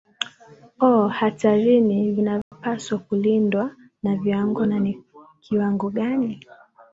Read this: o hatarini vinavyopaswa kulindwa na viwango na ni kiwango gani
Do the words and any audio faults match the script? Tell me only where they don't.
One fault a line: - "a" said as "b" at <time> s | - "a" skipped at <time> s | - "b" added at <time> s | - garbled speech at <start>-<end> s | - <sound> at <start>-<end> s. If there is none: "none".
- dropout at 2.4-2.5 s